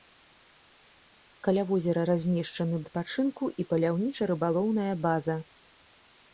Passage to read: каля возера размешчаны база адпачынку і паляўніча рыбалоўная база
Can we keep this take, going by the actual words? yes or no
no